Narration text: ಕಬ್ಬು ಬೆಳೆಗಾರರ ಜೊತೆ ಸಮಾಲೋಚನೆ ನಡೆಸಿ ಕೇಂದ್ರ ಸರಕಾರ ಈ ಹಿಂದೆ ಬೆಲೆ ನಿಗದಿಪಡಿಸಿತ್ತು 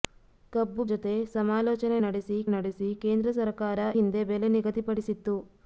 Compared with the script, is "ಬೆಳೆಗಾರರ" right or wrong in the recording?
wrong